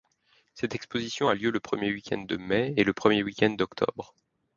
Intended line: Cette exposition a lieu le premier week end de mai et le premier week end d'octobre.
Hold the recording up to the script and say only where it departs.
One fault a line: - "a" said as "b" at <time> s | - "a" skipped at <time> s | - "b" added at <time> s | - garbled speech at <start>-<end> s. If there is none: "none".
none